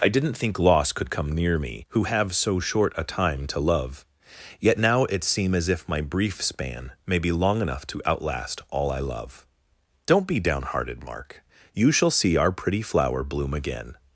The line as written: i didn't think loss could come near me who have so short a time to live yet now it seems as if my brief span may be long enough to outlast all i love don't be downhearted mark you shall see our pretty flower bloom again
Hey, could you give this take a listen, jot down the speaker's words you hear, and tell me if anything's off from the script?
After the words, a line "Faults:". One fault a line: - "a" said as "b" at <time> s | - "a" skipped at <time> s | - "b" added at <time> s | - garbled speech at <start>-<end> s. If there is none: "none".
i didn't think loss could come near me who have so short a time to love yet now it seem as if my brief span may be long enough to outlast all i love don't be downhearted mark you shall see our pretty flower bloom again
Faults:
- "live" said as "love" at 3.6 s
- "seems" said as "seem" at 5.2 s